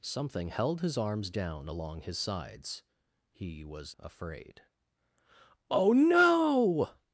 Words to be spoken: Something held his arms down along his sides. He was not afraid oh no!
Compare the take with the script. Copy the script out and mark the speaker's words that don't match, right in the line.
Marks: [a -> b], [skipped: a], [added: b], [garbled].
Something held his arms down along his sides. He was [skipped: not] afraid oh no!